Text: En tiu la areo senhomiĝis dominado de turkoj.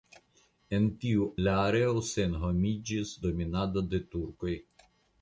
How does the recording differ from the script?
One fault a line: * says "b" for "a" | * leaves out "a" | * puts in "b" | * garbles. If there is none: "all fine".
all fine